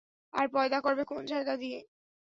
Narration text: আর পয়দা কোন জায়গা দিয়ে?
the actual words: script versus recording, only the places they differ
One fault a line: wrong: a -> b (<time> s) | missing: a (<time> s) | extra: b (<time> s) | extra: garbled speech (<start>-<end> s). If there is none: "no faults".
extra: করবে (0.8 s)